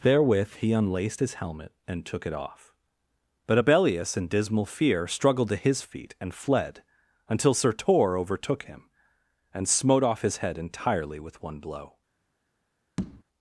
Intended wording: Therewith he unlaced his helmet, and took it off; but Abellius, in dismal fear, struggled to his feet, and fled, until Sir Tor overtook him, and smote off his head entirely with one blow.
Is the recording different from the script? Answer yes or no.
no